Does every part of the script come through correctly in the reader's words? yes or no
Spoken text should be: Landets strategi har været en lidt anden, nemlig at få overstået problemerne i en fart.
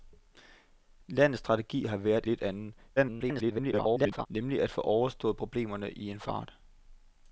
no